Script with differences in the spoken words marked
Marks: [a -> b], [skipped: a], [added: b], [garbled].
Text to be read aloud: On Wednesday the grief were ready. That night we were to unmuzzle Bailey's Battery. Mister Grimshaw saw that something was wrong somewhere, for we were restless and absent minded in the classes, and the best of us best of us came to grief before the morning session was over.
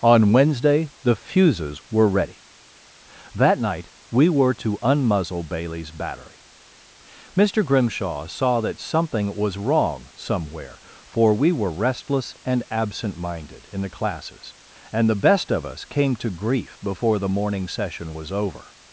On Wednesday the [grief -> fuses] were ready. That night we were to unmuzzle Bailey's Battery. Mister Grimshaw saw that something was wrong somewhere, for we were restless and absent minded in the classes, and the best of us [skipped: best of us] came to grief before the morning session was over.